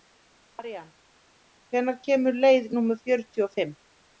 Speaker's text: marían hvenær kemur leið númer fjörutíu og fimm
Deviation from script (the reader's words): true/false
false